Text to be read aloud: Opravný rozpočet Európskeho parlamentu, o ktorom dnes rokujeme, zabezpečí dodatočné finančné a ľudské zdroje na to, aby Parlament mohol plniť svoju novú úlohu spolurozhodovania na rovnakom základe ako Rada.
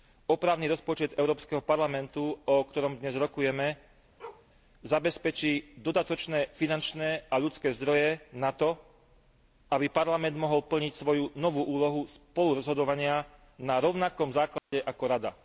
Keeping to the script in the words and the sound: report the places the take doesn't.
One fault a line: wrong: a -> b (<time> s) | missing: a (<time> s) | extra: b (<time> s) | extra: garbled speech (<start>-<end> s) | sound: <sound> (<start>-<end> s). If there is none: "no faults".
sound: bark (4.2-4.5 s)
sound: dropout (14.6-14.7 s)